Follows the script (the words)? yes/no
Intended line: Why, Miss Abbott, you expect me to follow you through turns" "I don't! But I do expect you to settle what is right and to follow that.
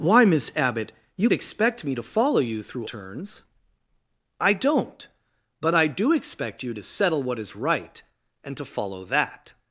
yes